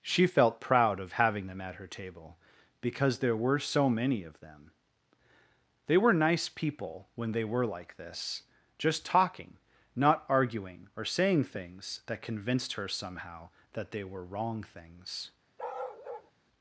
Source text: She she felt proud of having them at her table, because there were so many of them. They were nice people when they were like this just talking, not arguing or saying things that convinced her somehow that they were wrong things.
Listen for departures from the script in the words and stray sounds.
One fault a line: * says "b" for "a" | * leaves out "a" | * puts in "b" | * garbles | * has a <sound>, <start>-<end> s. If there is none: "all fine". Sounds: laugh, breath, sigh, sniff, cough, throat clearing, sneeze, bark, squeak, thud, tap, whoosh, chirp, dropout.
* leaves out "she"
* has a bark, 15.6-16.3 s